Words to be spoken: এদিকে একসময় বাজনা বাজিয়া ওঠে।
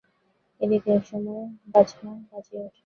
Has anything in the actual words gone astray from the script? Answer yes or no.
no